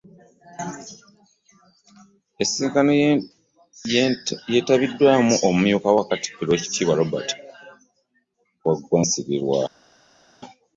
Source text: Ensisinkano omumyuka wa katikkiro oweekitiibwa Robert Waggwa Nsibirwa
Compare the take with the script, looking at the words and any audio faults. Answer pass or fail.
fail